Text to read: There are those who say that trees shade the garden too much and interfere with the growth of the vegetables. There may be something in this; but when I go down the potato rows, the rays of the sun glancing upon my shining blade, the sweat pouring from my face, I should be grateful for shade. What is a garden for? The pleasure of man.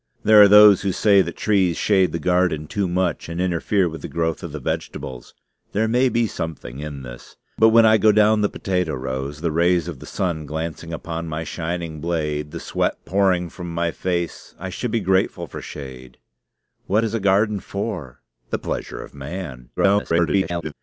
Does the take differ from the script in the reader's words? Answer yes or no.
yes